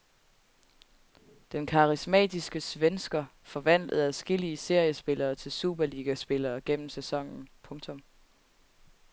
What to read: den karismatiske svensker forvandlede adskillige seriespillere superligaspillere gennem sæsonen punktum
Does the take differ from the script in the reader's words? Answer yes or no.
yes